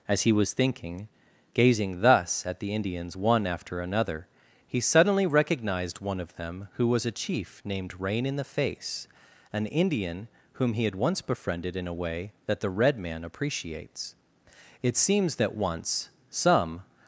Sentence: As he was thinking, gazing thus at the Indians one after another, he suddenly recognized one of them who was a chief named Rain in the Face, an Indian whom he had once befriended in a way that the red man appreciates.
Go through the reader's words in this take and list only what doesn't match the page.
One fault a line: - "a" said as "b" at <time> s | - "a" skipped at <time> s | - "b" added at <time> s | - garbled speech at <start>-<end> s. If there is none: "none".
- "It seems that once some" added at 14.8 s